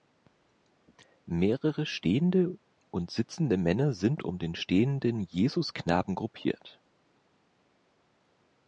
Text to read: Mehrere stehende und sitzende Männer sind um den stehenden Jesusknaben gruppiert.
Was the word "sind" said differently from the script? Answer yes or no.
no